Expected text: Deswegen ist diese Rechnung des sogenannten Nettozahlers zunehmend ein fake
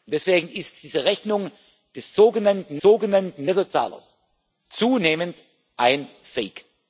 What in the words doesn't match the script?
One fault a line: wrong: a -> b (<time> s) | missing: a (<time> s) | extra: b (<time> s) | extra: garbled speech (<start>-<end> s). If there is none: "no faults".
extra: sogenannten (2.8 s)